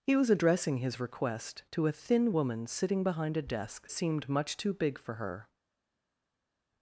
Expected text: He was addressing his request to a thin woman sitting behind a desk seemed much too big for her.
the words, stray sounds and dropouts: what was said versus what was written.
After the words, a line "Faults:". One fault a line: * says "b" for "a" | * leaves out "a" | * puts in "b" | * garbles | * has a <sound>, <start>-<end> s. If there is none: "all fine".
He was addressing his request to a thin woman sitting behind a desk seemed much too big for her.
Faults:
all fine